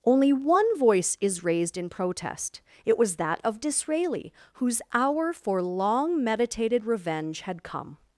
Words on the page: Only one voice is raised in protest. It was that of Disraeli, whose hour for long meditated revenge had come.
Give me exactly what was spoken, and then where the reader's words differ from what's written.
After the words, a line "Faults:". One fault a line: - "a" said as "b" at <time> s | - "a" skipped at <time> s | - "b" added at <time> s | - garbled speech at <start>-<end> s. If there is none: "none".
Only one voice is raised in protest. It was that of Disraeli, whose hour for long meditated revenge had come.
Faults:
none